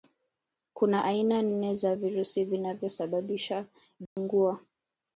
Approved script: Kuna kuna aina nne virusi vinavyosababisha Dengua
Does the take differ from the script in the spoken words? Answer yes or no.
yes